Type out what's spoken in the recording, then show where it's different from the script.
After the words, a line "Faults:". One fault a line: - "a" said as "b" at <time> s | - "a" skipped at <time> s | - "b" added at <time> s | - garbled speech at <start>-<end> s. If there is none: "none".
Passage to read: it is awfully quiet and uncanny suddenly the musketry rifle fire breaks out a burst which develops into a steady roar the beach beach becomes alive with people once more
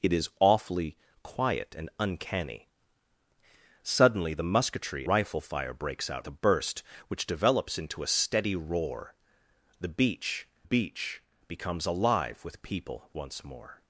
it is awfully quiet and uncanny suddenly the musketry rifle fire breaks out a burst which develops into a steady roar the beach beach becomes alive with people once more
Faults:
none